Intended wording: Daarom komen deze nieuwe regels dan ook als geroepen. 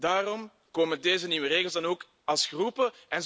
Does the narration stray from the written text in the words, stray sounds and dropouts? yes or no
no